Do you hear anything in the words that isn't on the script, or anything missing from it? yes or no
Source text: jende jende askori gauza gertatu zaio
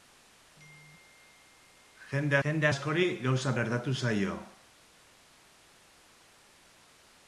no